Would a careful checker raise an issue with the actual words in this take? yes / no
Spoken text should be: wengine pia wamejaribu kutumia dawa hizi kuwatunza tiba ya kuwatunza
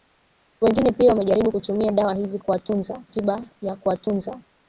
no